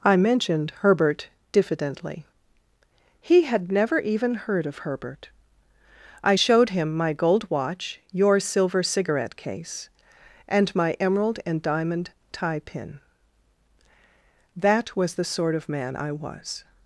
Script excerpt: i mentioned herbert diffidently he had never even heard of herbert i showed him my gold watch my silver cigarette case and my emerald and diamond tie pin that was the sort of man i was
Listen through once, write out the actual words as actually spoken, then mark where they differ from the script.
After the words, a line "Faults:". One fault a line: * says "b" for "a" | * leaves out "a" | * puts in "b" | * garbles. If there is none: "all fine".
i mentioned herbert diffidently he had never even heard of herbert i showed him my gold watch your silver cigarette case and my emerald and diamond tie pin that was the sort of man i was
Faults:
* says "your" for "my"